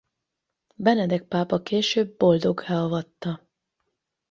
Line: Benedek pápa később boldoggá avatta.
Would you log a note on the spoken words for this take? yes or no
no